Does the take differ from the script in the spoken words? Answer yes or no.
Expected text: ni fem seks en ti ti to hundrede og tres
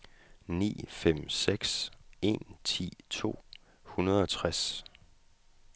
yes